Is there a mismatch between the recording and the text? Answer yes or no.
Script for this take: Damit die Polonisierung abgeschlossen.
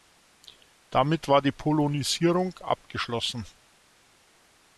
yes